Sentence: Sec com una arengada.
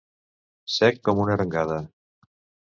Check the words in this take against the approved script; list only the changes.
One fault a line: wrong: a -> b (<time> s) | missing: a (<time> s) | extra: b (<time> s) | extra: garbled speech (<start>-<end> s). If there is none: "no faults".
no faults